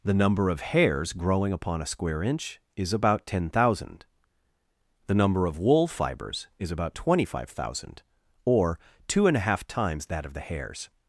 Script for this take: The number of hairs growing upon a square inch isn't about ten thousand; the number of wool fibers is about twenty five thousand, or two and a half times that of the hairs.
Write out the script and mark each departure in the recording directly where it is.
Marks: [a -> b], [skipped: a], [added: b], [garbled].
The number of hairs growing upon a square inch [isn't -> is] about ten thousand; the number of wool fibers is about twenty five thousand, or two and a half times that of the hairs.